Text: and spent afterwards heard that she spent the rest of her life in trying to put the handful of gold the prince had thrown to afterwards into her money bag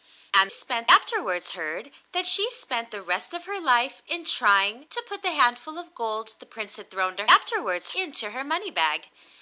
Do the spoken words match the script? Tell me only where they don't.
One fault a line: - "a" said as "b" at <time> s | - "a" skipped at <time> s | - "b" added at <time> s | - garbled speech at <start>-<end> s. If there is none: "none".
none